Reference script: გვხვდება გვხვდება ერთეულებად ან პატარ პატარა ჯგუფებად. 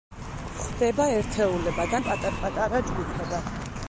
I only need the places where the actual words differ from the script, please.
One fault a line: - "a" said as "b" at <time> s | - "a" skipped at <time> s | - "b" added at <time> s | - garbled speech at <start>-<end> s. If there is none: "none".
- "გვხვდება" skipped at 1.1 s